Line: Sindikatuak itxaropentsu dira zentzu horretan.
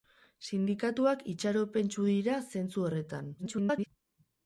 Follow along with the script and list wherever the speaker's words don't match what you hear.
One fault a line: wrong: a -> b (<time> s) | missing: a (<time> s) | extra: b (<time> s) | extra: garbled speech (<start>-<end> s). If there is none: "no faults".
extra: garbled speech (3.4-3.9 s)